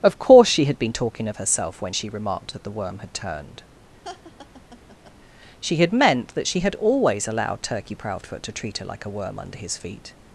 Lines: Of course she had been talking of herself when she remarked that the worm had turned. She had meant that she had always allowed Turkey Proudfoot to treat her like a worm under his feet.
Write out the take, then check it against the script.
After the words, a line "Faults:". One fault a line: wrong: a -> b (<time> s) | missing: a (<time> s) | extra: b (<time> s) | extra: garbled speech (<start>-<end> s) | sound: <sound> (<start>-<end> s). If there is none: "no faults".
Of course she had been talking of herself when she remarked that the worm had turned. She had meant that she had always allowed Turkey Proudfoot to treat her like a worm under his feet.
Faults:
sound: laugh (4.0-5.2 s)